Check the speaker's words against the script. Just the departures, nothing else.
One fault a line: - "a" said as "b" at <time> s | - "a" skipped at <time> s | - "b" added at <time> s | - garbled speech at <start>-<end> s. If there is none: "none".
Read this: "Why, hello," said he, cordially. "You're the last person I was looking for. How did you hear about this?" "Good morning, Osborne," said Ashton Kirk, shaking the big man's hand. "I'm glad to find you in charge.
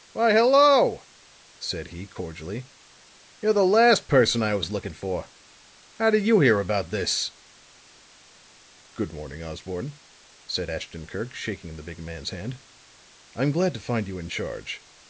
none